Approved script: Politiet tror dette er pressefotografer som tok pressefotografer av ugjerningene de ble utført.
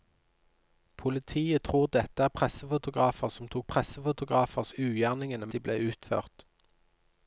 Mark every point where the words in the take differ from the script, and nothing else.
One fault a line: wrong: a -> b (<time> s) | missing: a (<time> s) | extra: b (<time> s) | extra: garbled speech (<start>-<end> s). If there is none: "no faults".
no faults